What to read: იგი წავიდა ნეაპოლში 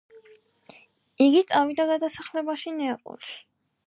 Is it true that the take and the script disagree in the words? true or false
true